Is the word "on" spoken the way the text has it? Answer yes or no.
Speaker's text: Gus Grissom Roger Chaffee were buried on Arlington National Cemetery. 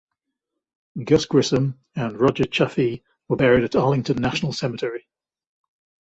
no